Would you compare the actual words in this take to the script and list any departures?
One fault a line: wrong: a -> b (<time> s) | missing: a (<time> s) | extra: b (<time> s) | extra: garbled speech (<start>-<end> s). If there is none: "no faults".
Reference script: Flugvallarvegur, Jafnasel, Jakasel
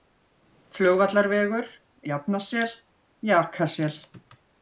no faults